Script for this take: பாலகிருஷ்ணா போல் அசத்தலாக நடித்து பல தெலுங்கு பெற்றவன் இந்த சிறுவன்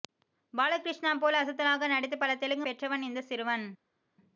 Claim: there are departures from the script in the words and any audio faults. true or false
false